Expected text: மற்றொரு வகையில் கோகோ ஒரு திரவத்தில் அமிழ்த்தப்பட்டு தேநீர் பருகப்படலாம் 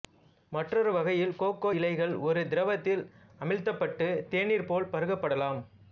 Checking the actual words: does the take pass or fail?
fail